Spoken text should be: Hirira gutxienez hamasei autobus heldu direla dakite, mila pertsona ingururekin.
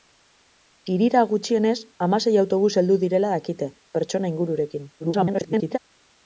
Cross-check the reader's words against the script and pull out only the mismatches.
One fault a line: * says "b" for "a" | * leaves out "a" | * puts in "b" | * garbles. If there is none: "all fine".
* leaves out "mila"
* garbles